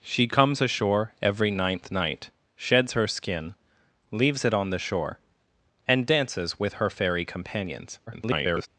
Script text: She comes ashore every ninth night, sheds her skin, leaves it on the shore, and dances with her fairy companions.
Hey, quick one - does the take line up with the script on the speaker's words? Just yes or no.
no